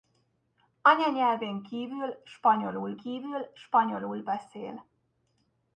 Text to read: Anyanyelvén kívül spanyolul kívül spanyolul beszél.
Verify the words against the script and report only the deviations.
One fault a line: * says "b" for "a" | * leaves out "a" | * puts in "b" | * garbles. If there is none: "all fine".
all fine